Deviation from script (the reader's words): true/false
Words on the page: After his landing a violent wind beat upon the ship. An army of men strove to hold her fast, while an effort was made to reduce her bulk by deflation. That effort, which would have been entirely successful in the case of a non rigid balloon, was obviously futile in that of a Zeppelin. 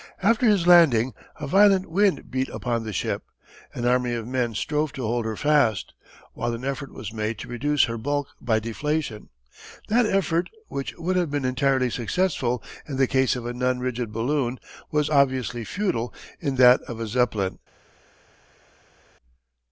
false